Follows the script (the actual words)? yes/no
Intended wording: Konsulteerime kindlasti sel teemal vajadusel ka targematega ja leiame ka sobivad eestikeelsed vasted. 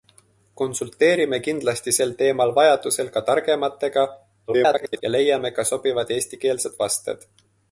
no